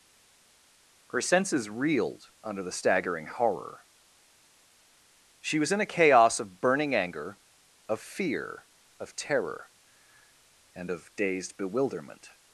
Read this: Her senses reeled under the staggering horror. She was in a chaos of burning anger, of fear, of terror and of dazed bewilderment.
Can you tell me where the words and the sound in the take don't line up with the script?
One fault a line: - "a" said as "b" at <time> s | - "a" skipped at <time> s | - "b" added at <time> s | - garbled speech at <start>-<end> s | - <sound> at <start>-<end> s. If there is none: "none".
none